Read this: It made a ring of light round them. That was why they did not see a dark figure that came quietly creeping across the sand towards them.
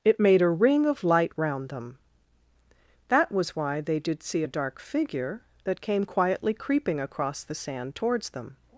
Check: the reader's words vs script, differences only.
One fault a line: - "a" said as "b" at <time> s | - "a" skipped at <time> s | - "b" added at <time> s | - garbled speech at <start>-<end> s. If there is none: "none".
- "not" skipped at 4.2 s